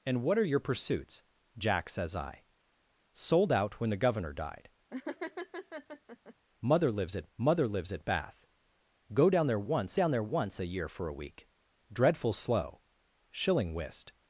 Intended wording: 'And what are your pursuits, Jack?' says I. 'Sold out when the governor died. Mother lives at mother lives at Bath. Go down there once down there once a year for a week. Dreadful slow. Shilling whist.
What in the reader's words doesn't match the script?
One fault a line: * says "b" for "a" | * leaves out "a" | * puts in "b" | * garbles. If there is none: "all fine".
all fine